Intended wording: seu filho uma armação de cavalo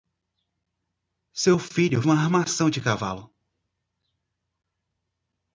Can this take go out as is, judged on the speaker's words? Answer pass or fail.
pass